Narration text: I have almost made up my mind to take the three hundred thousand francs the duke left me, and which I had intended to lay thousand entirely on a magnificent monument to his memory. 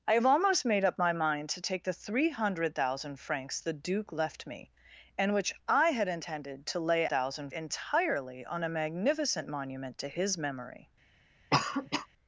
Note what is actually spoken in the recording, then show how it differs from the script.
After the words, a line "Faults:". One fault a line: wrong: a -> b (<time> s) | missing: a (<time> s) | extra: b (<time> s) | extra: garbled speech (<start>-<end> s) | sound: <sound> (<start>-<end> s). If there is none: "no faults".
I have almost made up my mind to take the three hundred thousand francs the duke left me, and which I had intended to lay thousand entirely on a magnificent monument to his memory.
Faults:
sound: cough (11.5-12.1 s)